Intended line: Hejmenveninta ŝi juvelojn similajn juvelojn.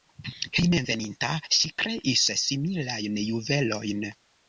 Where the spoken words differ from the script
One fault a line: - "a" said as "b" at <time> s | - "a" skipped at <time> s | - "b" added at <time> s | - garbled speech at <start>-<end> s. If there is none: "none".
- "juvelojn" said as "kreis" at 1.8 s